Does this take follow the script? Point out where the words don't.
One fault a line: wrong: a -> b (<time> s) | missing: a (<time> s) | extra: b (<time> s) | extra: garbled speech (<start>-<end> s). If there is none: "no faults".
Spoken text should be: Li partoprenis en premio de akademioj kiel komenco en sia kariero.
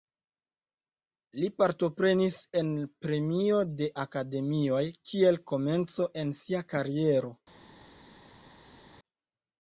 no faults